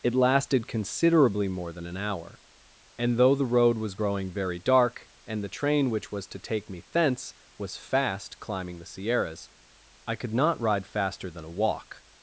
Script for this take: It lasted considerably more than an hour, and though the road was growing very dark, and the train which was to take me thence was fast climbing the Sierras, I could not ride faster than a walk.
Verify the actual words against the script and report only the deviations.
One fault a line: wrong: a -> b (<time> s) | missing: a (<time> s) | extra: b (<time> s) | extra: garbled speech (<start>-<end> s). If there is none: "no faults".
no faults